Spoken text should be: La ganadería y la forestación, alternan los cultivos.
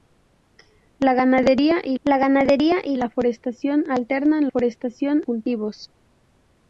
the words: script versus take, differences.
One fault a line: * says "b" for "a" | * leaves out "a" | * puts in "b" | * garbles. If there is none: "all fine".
* puts in "ganadería y la"
* says "forestación" for "los"